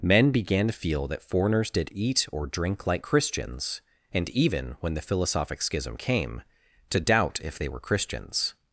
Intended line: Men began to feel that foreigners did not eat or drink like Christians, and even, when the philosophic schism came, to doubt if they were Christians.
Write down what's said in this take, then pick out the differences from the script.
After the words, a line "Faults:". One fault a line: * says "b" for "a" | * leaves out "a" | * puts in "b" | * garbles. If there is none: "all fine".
Men began to feel that foreigners did eat or drink like Christians, and even, when the philosophic schism came, to doubt if they were Christians.
Faults:
* leaves out "not"